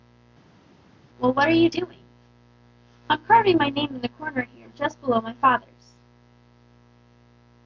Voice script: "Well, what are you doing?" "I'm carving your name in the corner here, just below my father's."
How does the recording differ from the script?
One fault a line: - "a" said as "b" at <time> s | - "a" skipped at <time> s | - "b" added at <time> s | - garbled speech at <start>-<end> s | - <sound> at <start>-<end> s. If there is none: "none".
- "your" said as "my" at 3.6 s